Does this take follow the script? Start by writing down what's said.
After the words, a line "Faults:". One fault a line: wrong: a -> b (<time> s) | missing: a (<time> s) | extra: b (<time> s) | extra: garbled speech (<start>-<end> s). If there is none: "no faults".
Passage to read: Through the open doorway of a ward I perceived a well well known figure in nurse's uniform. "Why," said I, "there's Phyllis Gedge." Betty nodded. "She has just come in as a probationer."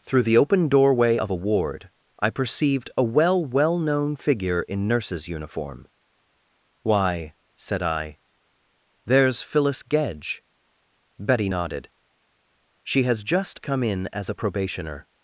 Through the open doorway of a ward I perceived a well well known figure in nurse's uniform. "Why," said I, "there's Phyllis Gedge." Betty nodded. "She has just come in as a probationer."
Faults:
no faults